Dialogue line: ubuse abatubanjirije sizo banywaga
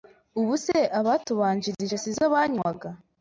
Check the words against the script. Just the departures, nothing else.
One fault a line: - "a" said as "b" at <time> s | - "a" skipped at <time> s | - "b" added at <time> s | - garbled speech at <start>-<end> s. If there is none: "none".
none